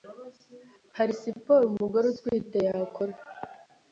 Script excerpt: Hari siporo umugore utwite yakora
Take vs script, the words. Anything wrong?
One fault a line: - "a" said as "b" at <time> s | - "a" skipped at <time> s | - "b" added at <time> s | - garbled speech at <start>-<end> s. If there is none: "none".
none